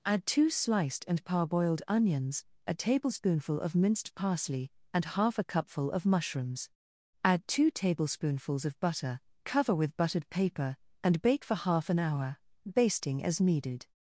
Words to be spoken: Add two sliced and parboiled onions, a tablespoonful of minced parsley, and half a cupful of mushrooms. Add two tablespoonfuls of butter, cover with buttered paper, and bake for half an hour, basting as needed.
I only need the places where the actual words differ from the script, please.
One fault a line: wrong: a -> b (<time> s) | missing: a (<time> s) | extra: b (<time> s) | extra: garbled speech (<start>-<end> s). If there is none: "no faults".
no faults